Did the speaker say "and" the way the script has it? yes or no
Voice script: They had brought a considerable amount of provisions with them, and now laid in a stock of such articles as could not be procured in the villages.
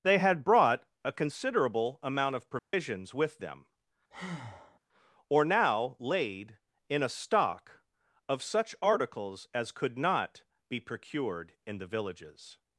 no